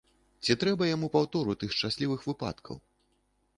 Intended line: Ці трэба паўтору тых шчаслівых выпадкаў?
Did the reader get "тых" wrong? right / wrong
right